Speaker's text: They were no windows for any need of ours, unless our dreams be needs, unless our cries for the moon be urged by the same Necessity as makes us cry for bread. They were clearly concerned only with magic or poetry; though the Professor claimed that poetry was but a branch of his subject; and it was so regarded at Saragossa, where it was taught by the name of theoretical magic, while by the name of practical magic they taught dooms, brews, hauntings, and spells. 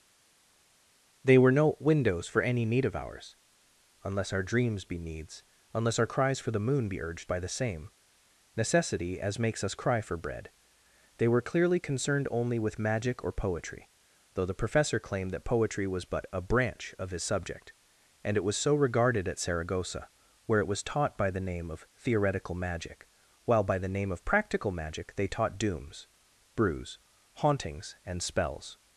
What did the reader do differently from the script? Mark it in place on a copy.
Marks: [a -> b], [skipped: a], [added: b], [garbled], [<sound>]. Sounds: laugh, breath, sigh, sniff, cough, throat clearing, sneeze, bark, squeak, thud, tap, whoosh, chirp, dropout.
They were no windows for any need of ours, unless our dreams be needs, unless our cries for the moon be urged by the same Necessity as makes us cry for bread. They were clearly concerned only with magic or poetry; though the Professor claimed that poetry was but a branch of his subject; and it was so regarded at Saragossa, where it was taught by the name of theoretical magic, while by the name of practical magic they taught dooms, brews, hauntings, and spells.